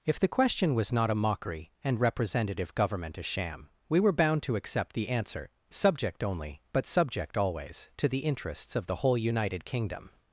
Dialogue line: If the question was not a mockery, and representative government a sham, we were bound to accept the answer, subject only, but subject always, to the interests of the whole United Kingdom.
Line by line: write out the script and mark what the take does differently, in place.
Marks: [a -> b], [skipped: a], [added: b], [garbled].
If the question was not a mockery, and representative government a sham, we were bound to accept the answer, subject only, but subject always, to the interests of the whole United Kingdom.